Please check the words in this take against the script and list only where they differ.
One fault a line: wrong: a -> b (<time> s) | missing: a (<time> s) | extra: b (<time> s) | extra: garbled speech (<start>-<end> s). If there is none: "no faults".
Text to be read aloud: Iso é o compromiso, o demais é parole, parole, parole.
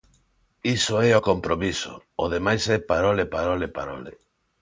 no faults